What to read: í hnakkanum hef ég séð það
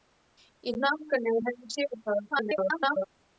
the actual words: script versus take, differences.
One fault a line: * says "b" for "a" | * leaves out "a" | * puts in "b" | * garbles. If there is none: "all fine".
* garbles